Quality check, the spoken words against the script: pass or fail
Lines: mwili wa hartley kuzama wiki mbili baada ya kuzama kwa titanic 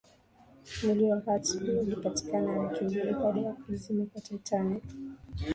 fail